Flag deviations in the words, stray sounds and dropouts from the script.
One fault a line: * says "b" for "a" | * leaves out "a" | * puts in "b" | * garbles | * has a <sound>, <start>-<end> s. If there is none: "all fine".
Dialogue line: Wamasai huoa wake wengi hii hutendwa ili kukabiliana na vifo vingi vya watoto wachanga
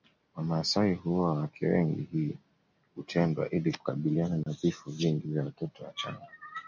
* has a dropout, 4.4-4.5 s